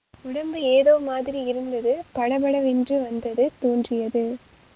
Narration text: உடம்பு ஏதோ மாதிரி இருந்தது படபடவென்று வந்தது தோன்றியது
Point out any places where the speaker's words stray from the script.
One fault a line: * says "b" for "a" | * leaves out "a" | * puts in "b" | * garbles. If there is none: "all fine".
all fine